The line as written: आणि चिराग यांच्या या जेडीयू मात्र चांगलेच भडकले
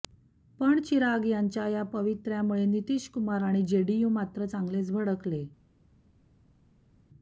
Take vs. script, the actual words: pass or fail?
fail